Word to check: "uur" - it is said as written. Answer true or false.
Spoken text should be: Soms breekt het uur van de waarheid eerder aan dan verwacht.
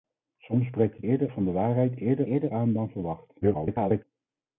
false